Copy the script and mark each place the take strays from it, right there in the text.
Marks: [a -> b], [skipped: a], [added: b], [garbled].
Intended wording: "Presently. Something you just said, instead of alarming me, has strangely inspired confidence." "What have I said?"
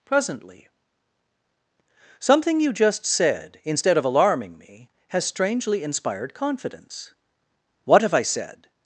"Presently. Something you just said, instead of alarming me, has strangely inspired confidence." "What have I said?"